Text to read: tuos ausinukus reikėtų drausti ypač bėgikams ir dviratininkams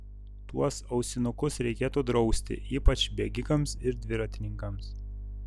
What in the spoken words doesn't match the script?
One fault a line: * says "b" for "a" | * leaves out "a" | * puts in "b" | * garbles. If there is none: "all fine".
all fine